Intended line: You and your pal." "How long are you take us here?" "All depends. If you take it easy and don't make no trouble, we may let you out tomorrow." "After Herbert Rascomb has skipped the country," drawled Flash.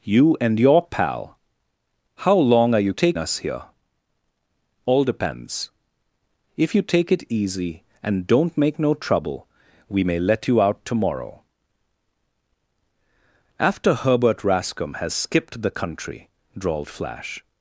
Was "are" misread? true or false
false